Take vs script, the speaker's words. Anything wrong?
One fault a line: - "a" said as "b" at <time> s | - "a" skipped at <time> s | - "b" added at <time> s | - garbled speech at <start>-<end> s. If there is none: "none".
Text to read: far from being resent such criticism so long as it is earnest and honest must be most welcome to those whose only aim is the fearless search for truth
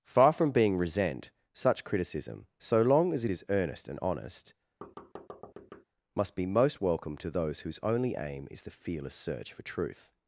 none